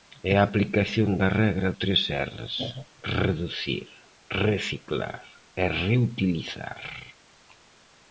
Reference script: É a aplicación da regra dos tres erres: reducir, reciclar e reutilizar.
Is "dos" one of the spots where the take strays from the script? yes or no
yes